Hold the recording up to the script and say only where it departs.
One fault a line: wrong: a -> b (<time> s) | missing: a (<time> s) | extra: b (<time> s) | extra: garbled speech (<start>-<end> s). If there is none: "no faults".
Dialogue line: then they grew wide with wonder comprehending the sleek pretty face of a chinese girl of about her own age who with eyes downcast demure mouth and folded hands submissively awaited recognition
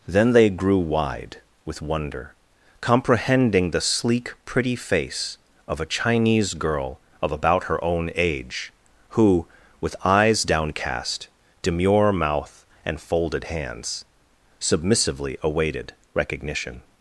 no faults